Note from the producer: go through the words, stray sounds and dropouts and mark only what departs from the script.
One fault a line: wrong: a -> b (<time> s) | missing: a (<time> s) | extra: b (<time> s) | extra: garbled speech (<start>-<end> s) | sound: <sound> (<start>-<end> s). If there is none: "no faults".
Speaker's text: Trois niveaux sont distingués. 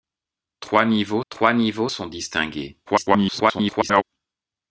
extra: trois niveaux (1.3 s)
extra: garbled speech (2.9-4.0 s)